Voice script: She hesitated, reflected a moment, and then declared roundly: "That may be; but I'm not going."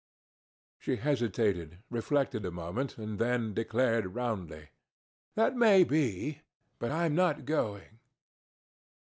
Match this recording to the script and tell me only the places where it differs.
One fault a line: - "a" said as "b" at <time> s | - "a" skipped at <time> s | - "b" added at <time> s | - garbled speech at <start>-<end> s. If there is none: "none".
none